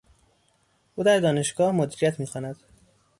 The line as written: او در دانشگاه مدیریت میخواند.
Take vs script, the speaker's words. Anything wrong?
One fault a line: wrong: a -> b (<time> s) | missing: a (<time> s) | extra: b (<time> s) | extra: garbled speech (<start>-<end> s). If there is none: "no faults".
no faults